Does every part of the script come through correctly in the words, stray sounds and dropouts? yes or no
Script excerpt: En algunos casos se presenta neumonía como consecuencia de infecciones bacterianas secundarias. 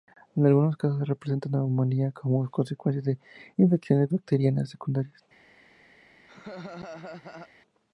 no